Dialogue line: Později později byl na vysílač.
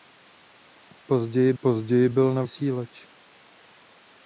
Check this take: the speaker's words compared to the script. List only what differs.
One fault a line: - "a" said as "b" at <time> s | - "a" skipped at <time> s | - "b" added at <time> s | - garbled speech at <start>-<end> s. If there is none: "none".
none